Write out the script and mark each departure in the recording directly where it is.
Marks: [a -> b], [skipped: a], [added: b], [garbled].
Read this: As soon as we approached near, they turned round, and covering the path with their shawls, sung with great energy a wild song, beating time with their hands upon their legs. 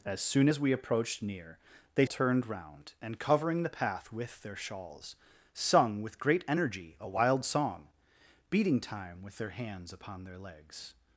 As soon as we approached near, they turned round, and covering the path with their shawls, sung with great energy a wild song, beating time with their hands upon their legs.